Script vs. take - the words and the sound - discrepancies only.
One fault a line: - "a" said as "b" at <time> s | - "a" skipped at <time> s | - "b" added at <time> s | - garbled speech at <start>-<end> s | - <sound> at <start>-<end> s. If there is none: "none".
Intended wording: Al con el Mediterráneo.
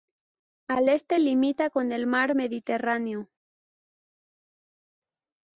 - "este limita" added at 0.9 s
- "mar" added at 2.1 s